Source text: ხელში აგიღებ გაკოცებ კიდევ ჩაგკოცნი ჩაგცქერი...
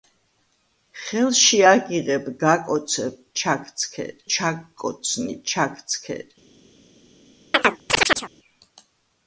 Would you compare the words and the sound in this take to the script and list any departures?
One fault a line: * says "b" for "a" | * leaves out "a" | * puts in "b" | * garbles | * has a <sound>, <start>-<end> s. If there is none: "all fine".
* says "ჩაგცქერი" for "კიდევ"
* has a chirp, 7.5-8.3 s